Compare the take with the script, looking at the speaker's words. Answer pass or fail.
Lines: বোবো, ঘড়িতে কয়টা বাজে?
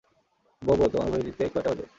fail